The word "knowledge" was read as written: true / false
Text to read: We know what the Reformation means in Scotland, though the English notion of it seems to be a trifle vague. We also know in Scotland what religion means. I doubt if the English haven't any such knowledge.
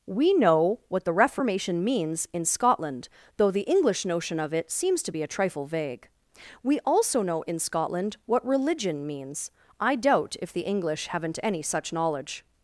true